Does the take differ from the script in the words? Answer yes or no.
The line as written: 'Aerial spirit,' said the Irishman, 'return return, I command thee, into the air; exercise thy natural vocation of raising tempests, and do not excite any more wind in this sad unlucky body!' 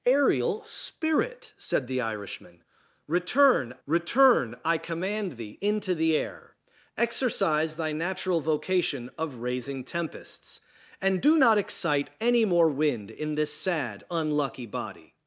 no